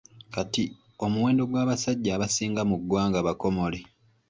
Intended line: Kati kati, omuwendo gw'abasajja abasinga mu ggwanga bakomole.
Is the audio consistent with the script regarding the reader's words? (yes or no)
no